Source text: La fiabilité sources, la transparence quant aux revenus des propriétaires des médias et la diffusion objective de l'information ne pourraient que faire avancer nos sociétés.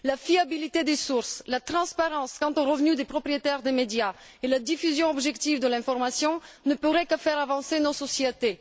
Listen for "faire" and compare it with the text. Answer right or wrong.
right